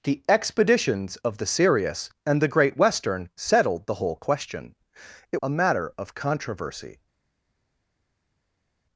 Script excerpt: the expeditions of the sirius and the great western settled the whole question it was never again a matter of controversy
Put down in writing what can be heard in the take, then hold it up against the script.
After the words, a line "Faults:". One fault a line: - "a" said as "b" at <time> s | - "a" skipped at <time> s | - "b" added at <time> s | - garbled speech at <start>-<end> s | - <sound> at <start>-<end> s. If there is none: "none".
the expeditions of the sirius and the great western settled the whole question it a matter of controversy
Faults:
- "was never again" skipped at 5.4 s